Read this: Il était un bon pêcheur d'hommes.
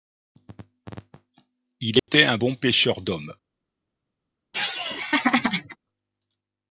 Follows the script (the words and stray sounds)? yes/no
no